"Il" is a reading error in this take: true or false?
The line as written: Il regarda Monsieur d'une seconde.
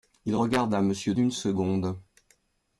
false